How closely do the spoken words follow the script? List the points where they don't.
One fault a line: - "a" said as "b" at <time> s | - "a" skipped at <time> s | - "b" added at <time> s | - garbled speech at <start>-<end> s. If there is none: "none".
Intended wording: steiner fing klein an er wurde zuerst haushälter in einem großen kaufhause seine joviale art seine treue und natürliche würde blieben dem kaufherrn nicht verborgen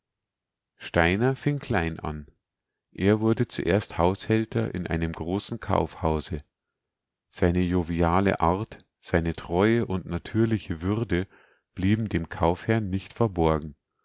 none